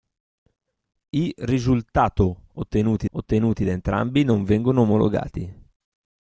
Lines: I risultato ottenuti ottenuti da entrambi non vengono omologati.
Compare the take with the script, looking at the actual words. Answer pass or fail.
pass